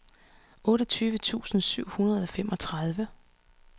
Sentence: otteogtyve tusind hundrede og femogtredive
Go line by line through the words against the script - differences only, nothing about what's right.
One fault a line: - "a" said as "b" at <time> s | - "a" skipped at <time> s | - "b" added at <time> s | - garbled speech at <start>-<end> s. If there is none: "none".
- "syv" added at 1.6 s